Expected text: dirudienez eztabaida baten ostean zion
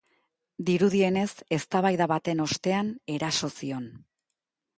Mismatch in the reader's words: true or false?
true